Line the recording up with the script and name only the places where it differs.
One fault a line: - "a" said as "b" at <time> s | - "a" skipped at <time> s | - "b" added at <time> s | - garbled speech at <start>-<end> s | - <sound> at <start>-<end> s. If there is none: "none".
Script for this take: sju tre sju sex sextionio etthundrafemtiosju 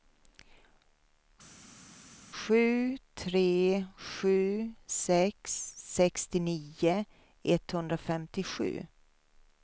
none